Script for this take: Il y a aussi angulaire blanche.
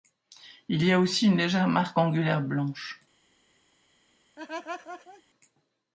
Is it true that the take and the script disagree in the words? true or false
true